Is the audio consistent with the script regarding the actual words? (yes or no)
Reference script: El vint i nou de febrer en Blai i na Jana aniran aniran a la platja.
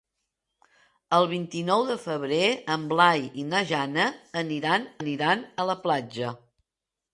yes